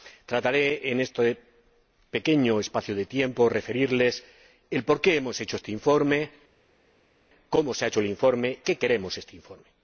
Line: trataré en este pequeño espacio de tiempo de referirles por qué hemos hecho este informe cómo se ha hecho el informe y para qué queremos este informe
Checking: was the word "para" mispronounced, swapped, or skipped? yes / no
yes